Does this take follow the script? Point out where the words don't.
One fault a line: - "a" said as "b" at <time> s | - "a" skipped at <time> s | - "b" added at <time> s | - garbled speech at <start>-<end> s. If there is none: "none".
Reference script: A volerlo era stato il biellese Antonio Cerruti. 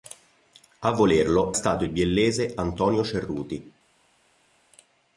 - "era" skipped at 1.5 s